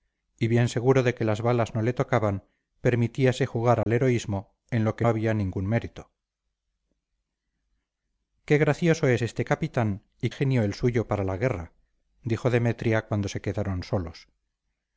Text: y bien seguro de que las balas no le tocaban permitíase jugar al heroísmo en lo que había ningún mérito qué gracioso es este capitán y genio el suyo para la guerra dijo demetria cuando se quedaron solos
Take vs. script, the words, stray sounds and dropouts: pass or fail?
fail